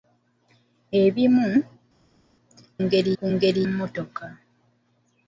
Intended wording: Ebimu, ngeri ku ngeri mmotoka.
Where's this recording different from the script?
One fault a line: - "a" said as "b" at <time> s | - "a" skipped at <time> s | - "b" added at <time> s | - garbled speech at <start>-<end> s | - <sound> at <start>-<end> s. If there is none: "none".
none